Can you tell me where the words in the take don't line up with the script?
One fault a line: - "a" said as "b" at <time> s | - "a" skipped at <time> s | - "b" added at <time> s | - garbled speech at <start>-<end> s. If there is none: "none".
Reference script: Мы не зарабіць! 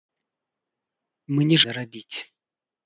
none